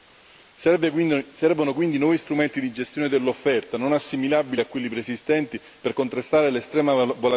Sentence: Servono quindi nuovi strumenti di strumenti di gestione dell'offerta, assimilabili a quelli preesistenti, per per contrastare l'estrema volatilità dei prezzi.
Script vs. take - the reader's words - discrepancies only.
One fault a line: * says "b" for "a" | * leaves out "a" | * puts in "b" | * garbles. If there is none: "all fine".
* leaves out "strumenti di"
* puts in "non"
* leaves out "per"